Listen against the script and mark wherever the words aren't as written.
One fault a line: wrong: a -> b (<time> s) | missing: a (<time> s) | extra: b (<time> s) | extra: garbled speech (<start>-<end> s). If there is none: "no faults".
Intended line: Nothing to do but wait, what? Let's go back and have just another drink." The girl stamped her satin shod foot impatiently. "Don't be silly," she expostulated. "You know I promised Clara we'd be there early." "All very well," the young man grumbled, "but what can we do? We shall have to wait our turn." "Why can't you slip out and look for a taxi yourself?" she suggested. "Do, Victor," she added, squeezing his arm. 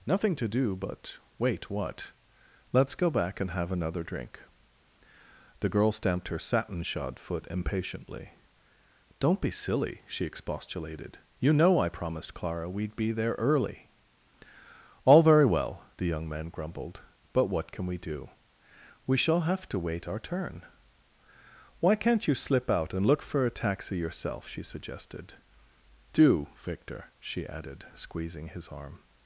missing: just (3.7 s)